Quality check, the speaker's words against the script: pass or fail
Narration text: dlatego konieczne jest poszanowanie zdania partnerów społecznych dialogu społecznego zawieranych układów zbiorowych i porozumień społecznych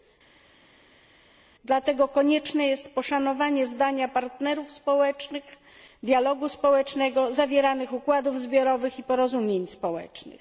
pass